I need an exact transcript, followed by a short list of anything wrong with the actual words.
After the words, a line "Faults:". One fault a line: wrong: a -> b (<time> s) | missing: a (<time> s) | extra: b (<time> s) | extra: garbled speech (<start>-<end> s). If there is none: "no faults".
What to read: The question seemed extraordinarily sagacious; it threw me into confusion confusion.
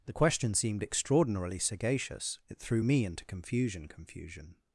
The question seemed extraordinarily sagacious; it threw me into confusion confusion.
Faults:
no faults